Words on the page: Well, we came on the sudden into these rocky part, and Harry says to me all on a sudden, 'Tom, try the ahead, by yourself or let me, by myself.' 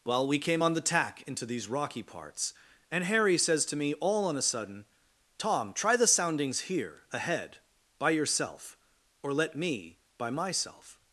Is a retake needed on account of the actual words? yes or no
yes